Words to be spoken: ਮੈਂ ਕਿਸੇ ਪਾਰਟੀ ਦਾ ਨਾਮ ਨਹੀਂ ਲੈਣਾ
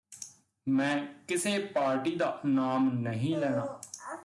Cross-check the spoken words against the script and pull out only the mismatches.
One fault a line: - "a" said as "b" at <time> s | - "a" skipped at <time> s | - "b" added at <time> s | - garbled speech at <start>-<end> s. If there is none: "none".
none